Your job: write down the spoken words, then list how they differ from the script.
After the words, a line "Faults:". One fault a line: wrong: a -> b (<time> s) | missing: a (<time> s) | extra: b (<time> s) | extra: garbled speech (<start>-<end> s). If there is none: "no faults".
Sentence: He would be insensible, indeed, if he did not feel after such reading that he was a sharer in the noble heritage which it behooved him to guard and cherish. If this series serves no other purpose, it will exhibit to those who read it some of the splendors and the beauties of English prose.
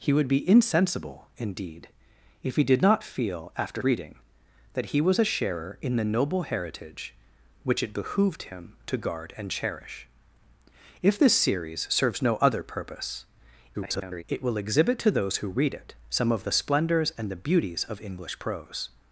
He would be insensible, indeed, if he did not feel after reading that he was a sharer in the noble heritage which it behooved him to guard and cherish. If this series serves no other purpose, [garbled] it will exhibit to those who read it some of the splendors and the beauties of English prose.
Faults:
missing: such (3.8 s)
extra: garbled speech (13.7-14.2 s)